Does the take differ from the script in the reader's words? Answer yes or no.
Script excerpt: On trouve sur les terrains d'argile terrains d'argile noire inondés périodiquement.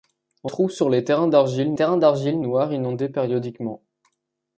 no